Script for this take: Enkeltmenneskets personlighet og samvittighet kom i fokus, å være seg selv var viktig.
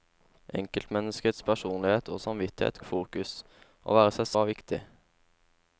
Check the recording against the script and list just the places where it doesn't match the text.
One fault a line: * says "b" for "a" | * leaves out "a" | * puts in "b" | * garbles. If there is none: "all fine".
* leaves out "kom"
* leaves out "selv"